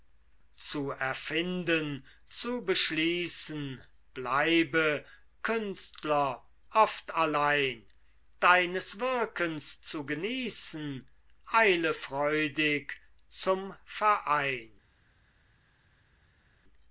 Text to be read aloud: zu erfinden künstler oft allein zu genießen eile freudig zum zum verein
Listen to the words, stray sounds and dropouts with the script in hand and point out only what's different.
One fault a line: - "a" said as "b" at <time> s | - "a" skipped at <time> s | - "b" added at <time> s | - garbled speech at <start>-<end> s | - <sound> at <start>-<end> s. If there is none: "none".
- "zu beschließen bleibe" added at 2.3 s
- "deines wirkens" added at 8.4 s
- "zum" skipped at 13.8 s